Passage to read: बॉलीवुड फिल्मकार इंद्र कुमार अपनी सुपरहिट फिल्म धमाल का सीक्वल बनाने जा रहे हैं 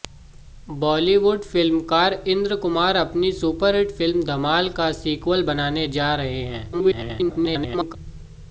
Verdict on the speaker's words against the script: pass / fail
fail